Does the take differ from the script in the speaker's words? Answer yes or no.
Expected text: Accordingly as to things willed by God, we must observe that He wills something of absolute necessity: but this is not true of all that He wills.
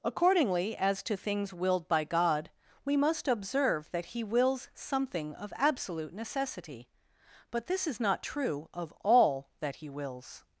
no